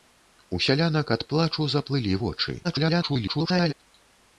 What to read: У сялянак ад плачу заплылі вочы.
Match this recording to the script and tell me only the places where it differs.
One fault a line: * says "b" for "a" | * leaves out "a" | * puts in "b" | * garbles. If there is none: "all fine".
* garbles